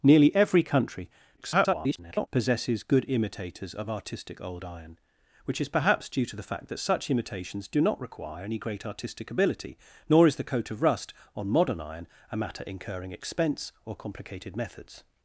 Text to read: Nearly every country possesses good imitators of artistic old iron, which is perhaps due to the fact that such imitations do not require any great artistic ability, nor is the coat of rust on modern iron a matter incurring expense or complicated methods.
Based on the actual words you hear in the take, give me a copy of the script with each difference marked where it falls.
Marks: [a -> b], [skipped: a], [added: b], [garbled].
Nearly every country [garbled] possesses good imitators of artistic old iron, which is perhaps due to the fact that such imitations do not require any great artistic ability, nor is the coat of rust on modern iron a matter incurring expense or complicated methods.